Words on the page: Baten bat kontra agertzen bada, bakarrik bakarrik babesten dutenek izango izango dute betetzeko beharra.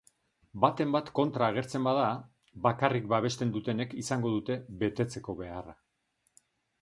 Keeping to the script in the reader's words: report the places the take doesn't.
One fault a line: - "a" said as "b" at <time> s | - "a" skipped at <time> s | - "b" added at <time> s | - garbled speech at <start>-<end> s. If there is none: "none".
- "bakarrik" skipped at 3.1 s
- "izango" skipped at 4.3 s